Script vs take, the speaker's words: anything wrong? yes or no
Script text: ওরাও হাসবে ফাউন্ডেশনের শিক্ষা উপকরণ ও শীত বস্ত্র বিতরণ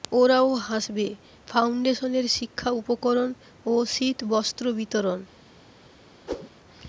no